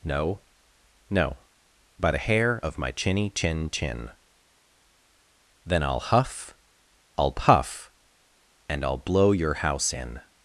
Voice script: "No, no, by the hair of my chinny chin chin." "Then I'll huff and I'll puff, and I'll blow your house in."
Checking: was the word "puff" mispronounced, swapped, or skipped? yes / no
no